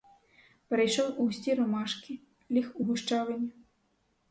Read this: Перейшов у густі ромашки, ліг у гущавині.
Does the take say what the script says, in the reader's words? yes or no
yes